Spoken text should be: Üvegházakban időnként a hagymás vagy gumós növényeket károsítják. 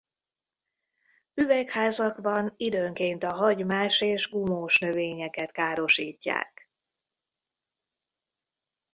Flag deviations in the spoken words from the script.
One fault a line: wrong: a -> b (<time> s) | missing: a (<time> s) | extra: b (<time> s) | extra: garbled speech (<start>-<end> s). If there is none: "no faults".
wrong: vagy -> és (4.0 s)